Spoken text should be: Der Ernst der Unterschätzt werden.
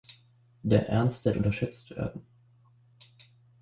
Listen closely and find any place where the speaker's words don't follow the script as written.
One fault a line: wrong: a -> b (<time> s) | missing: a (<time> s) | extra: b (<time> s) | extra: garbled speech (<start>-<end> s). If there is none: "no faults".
no faults